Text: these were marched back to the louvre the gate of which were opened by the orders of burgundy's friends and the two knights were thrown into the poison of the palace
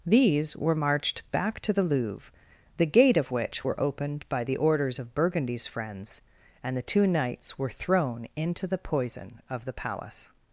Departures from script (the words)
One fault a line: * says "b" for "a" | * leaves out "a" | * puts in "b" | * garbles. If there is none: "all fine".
all fine